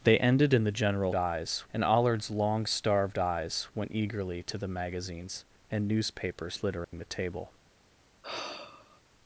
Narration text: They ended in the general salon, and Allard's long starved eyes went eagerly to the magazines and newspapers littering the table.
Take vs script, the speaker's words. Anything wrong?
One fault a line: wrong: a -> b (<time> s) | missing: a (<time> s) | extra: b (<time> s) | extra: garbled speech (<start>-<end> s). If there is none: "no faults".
wrong: salon -> eyes (1.1 s)